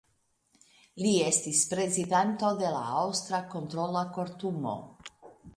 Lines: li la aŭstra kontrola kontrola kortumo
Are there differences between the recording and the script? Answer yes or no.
yes